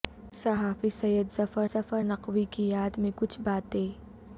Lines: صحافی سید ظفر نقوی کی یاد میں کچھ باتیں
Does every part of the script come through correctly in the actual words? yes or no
no